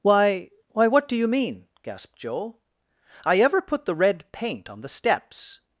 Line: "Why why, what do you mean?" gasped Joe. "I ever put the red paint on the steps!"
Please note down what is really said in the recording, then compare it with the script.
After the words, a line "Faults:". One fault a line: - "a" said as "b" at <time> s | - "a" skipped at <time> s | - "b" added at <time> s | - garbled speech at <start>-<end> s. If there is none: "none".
"Why why, what do you mean?" gasped Joe. "I ever put the red paint on the steps!"
Faults:
none